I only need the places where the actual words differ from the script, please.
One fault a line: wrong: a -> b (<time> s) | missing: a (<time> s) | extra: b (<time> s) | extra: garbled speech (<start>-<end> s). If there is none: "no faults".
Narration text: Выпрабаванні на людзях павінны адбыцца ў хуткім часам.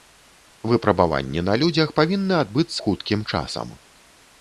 missing: ў (2.8 s)